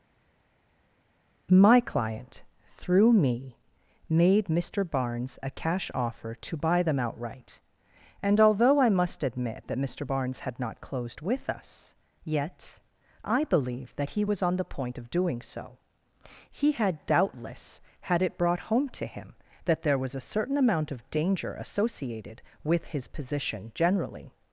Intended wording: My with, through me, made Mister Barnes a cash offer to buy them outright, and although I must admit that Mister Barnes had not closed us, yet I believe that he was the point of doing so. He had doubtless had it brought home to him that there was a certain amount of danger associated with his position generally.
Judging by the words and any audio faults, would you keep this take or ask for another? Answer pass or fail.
fail